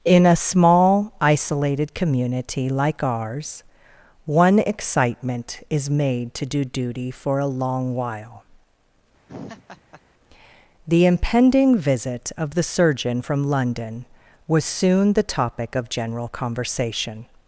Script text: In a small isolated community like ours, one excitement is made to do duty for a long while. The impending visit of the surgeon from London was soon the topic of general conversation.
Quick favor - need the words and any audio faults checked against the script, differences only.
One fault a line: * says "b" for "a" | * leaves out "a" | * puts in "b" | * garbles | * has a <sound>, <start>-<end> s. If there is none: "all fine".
* has a laugh, 9.3-10.0 s